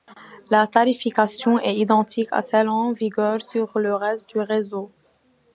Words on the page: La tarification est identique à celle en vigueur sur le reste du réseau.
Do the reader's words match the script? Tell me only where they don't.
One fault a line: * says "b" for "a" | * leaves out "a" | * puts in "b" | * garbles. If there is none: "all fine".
all fine